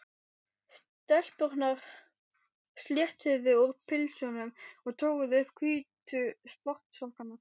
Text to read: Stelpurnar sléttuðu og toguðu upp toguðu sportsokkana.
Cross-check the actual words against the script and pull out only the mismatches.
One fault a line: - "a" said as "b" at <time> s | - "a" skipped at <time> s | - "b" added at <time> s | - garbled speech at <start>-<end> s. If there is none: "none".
- "úr pilsunum" added at 3.6 s
- "toguðu" said as "hvítu" at 5.6 s